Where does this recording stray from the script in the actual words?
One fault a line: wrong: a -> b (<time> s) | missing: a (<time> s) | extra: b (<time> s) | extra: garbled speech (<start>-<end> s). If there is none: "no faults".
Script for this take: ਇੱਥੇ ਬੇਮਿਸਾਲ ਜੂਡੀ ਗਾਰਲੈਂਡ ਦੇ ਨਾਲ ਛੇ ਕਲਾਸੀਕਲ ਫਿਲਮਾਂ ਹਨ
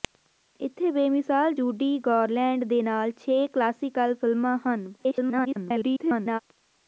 extra: garbled speech (5.0-6.4 s)